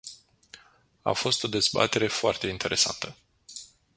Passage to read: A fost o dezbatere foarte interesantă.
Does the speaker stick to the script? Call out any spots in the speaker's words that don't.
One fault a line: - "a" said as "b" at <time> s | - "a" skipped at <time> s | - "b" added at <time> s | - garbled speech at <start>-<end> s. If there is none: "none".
none